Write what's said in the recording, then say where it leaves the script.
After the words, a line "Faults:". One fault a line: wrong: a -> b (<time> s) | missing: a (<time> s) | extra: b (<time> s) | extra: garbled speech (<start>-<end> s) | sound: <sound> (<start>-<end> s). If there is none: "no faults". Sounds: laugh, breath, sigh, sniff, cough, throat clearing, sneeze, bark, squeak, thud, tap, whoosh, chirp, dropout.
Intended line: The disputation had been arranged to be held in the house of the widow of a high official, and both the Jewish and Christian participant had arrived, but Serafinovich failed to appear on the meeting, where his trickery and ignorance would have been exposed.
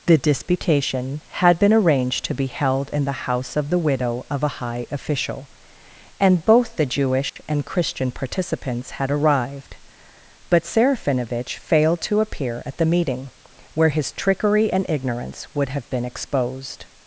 The disputation had been arranged to be held in the house of the widow of a high official, and both the Jewish and Christian participants had arrived, but Serafinovich failed to appear at the meeting, where his trickery and ignorance would have been exposed.
Faults:
sound: dropout (7.3-7.4 s)
wrong: participant -> participants (8.1 s)
wrong: on -> at (12.6 s)